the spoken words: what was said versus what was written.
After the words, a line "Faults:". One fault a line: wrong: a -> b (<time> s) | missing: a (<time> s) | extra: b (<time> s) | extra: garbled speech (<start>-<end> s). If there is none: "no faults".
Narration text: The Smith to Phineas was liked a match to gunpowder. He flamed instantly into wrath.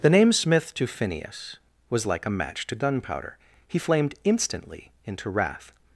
The name Smith to Phineas was like a match to gunpowder. He flamed instantly into wrath.
Faults:
extra: name (0.1 s)
wrong: liked -> like (2.1 s)